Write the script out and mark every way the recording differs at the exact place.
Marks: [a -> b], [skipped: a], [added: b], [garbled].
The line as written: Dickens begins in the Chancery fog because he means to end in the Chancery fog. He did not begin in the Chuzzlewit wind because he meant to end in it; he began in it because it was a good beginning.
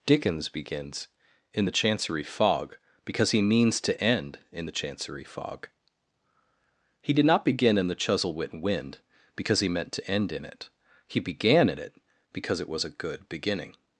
Dickens begins in the Chancery fog because he means to end in the Chancery fog. He did not begin in the Chuzzlewit wind because he meant to end in it; he began in it because it was a good beginning.